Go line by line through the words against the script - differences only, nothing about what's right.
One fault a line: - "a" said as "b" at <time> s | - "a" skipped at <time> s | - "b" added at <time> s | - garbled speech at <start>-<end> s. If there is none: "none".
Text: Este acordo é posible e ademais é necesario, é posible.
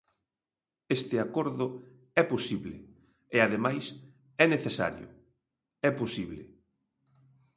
none